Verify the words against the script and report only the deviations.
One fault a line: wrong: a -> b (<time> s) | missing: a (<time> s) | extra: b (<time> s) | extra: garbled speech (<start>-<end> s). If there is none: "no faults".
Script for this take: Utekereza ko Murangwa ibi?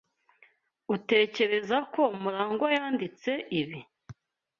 extra: yanditse (2.8 s)